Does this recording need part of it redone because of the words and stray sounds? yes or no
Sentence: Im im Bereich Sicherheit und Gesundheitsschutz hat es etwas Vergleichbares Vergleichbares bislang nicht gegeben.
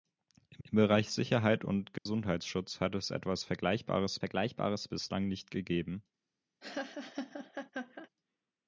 yes